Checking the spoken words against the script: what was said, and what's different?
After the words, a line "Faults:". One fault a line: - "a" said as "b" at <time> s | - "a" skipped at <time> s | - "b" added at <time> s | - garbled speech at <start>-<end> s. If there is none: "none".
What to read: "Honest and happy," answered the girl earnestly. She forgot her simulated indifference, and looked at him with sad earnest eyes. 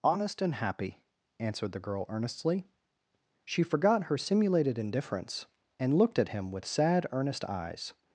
"Honest and happy," answered the girl earnestly. She forgot her simulated indifference, and looked at him with sad earnest eyes.
Faults:
none